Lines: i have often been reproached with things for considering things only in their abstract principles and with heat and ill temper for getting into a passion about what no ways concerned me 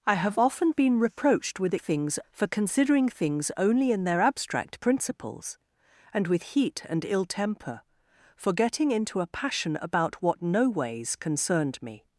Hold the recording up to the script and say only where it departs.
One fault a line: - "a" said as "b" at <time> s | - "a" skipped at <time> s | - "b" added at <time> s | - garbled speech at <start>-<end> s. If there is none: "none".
none